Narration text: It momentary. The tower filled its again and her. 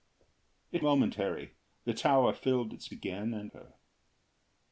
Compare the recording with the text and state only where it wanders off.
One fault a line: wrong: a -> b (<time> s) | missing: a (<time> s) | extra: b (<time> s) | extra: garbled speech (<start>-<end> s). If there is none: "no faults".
no faults